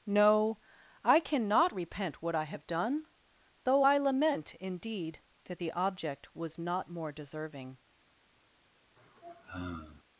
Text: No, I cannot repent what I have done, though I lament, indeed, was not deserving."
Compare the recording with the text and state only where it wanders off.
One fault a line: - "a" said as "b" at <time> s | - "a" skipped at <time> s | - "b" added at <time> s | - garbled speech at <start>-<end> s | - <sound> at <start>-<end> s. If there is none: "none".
- "that the object" added at 5.4 s
- "more" added at 6.9 s
- sigh at 9.0-10.0 s